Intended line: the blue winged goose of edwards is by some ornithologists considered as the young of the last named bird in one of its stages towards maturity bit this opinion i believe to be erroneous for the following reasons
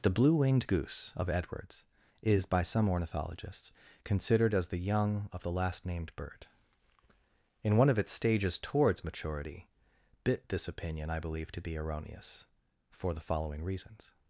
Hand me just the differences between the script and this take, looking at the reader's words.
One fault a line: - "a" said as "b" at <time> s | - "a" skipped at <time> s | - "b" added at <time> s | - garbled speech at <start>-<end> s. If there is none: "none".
none